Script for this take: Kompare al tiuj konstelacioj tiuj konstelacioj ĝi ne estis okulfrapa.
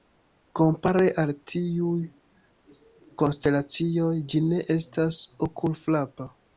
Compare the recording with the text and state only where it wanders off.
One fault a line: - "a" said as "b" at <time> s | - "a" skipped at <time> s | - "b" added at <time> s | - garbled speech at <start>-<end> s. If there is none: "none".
- "tiuj konstelacioj" skipped at 4.1 s
- "estis" said as "estas" at 4.8 s